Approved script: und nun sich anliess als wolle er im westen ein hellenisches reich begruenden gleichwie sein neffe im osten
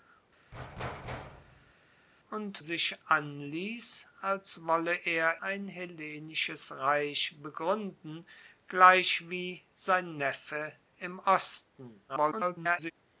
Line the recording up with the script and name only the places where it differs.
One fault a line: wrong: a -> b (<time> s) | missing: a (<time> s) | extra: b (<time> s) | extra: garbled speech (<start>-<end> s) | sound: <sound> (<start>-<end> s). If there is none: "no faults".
sound: thud (0.5-1.7 s)
missing: nun (2.6 s)
missing: im westen (5.4 s)
extra: garbled speech (12.1-12.9 s)